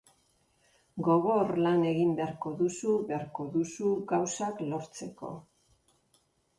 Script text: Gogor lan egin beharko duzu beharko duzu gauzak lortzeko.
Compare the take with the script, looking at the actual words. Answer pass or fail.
pass